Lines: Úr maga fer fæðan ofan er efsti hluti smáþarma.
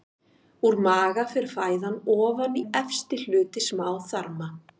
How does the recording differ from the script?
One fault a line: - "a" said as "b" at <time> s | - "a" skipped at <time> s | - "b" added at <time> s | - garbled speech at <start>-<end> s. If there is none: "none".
none